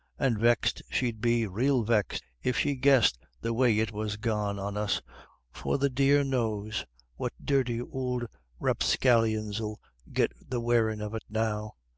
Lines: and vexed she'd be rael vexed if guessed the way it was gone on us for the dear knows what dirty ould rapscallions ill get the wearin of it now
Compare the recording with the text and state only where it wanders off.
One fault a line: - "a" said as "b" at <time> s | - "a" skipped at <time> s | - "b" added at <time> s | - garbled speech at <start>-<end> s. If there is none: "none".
- "she" added at 2.6 s